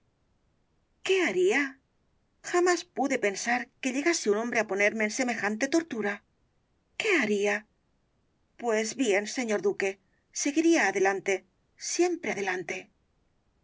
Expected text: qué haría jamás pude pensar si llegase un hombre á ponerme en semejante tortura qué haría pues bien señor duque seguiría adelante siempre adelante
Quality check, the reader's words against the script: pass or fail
fail